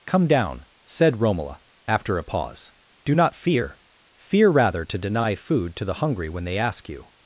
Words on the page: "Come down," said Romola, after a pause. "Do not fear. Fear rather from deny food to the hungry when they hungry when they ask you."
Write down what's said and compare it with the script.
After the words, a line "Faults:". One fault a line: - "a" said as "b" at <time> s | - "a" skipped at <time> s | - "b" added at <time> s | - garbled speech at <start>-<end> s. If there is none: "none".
"Come down," said Romola, after a pause. "Do not fear. Fear rather to deny food to the hungry when they ask you."
Faults:
- "from" said as "to" at 4.8 s
- "hungry when they" skipped at 6.6 s